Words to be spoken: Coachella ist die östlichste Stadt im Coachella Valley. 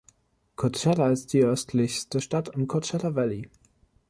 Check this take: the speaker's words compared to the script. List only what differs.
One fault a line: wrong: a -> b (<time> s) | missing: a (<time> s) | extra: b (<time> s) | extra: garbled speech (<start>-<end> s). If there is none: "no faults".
no faults